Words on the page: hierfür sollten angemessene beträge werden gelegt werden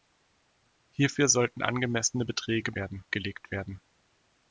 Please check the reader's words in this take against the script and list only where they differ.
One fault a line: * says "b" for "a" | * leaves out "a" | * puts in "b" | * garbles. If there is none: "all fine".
all fine